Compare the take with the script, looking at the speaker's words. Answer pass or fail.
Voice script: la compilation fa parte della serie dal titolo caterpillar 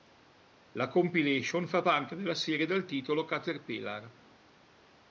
pass